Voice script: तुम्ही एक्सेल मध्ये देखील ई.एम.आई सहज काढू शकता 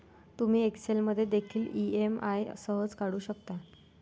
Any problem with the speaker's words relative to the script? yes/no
no